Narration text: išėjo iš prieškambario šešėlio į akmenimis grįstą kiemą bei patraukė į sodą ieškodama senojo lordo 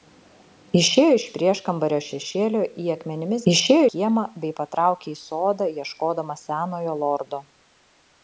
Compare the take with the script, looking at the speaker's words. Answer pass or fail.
fail